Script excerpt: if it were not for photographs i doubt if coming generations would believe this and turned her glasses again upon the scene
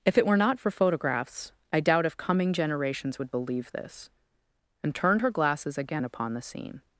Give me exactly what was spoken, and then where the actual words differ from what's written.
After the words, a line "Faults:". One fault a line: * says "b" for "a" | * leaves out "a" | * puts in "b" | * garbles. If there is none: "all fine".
if it were not for photographs i doubt if coming generations would believe this and turned her glasses again upon the scene
Faults:
all fine